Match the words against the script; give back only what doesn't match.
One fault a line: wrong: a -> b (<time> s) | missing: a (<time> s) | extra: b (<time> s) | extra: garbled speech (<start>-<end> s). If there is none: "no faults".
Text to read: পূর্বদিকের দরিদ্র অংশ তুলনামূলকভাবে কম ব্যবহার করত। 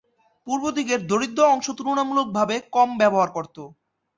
no faults